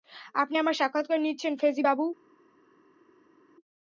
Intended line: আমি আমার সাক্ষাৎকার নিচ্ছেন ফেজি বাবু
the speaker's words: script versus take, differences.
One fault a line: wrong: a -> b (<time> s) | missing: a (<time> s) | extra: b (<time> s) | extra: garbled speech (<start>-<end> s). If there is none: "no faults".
wrong: আমি -> আপনি (0.3 s)